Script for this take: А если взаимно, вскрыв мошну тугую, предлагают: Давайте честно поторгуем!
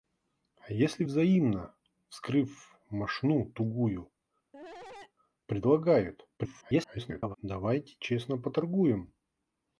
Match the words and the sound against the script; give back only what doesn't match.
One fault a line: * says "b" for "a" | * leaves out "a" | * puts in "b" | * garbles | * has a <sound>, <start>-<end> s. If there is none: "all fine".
* has a cough, 4.5-5.1 s
* garbles